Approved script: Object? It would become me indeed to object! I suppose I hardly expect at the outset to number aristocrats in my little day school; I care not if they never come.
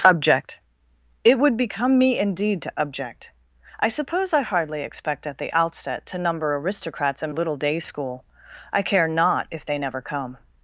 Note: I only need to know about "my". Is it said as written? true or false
false